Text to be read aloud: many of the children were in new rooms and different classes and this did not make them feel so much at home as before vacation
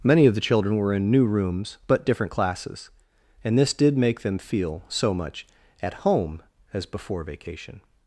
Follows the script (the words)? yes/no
no